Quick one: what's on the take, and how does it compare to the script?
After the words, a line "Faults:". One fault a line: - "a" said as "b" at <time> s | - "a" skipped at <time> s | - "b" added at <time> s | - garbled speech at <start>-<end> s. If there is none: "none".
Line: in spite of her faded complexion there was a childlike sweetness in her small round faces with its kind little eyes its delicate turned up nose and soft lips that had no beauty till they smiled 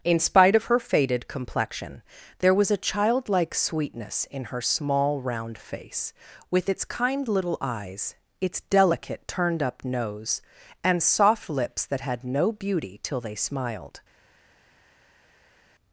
in spite of her faded complexion there was a childlike sweetness in her small round face with its kind little eyes its delicate turned up nose and soft lips that had no beauty till they smiled
Faults:
- "faces" said as "face" at 5.6 s